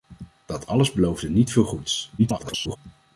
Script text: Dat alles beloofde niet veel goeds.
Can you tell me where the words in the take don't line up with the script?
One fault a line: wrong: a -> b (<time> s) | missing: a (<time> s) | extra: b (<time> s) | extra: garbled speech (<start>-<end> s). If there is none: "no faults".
extra: garbled speech (2.2-2.8 s)